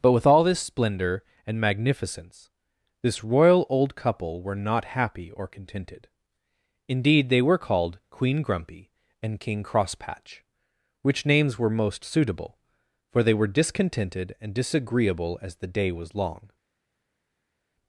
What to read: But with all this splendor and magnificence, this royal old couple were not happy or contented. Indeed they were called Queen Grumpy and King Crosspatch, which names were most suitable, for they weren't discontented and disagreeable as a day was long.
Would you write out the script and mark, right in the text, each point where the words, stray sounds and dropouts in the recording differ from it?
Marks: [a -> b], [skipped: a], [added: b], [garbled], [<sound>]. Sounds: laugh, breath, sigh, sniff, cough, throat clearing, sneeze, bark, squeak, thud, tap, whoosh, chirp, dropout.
But with all this splendor and magnificence, this royal old couple were not happy or contented. Indeed they were called Queen Grumpy and King Crosspatch, which names were most suitable, for they [weren't -> were] discontented and disagreeable as [a -> the] day was long.